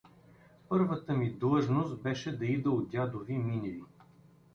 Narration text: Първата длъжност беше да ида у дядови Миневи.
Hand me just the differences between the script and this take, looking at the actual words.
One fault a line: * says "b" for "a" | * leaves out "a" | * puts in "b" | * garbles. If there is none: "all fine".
* puts in "ми"